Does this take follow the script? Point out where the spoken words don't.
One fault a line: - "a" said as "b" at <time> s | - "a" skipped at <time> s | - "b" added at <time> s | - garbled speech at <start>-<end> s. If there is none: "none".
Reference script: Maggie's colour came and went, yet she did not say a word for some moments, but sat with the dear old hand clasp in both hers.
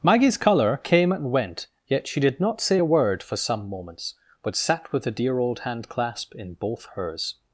none